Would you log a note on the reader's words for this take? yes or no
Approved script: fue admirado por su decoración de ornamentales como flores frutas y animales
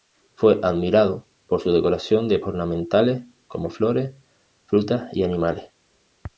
no